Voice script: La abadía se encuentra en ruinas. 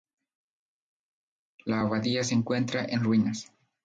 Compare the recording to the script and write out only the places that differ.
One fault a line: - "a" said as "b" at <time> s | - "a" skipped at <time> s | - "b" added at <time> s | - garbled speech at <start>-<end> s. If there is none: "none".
none